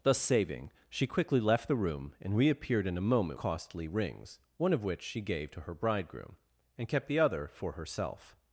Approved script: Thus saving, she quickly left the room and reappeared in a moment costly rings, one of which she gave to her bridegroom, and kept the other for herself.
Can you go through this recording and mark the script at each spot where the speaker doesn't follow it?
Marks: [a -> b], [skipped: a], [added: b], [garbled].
Thus saving, she quickly left the room and reappeared in a moment costly rings, one of which she gave to her bridegroom, and kept the other for herself.